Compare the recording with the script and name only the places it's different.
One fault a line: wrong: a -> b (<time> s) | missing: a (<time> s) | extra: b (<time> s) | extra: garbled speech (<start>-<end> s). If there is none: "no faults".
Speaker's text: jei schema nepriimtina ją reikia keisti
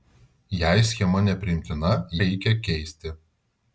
missing: ją (1.9 s)